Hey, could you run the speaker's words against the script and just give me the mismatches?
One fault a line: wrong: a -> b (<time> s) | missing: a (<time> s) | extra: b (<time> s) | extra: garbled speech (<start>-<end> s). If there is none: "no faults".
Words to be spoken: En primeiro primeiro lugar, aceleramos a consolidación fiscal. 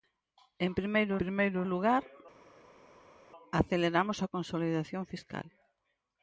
no faults